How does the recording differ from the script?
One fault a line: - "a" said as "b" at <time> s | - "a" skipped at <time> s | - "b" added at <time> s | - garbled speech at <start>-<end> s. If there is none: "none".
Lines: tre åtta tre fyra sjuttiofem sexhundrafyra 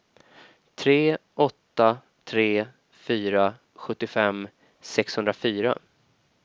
none